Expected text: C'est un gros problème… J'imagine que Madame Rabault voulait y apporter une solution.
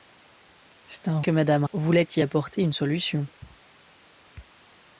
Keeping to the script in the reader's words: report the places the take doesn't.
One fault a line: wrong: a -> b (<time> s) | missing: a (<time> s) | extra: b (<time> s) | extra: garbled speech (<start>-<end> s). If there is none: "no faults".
missing: gros problème J'imagine (1.2 s)
missing: Rabault (1.6 s)